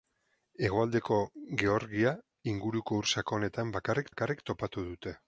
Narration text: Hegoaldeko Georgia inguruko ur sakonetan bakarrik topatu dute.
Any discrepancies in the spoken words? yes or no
yes